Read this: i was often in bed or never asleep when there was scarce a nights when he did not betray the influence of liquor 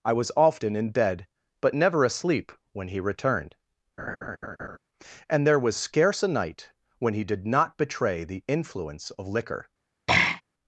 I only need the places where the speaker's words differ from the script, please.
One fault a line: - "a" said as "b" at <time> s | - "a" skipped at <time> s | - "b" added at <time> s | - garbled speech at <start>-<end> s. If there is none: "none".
- "or" said as "but" at 1.6 s
- "he returned and" added at 2.9 s
- "nights" said as "night" at 6.3 s